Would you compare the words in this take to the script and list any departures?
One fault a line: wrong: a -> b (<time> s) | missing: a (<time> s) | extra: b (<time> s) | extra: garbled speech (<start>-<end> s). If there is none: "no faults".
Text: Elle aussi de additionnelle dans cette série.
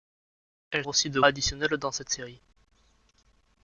no faults